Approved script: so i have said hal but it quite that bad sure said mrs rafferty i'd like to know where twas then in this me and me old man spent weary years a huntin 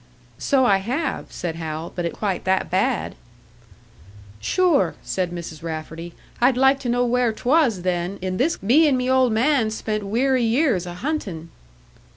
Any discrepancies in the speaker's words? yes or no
no